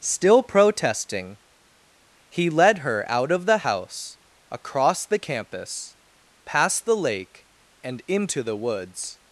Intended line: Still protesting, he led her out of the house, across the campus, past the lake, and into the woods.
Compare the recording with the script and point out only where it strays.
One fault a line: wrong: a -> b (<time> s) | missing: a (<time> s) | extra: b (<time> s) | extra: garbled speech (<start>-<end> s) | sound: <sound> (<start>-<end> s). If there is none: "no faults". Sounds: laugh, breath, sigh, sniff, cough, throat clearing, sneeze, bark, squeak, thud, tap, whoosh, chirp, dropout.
no faults